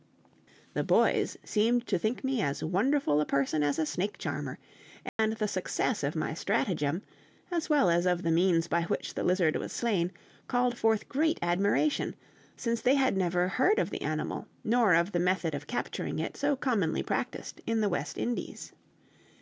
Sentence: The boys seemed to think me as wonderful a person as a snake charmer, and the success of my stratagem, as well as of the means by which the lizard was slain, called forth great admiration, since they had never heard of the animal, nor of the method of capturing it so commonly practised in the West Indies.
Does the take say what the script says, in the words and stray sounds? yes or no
no